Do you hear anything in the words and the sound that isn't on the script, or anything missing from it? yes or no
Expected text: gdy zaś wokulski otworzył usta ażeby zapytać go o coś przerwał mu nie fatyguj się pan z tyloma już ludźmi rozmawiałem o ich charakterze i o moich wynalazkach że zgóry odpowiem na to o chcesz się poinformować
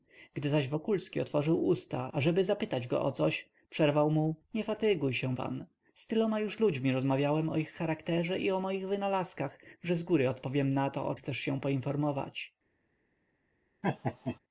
yes